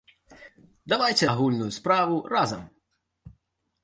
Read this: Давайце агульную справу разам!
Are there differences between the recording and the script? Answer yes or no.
no